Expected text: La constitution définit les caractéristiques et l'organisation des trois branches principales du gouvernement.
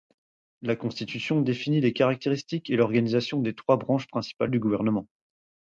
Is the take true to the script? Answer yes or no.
yes